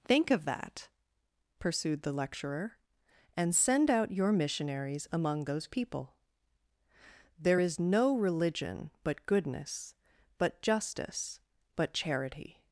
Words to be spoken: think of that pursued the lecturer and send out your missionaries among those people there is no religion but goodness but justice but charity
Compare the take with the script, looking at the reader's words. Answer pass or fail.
pass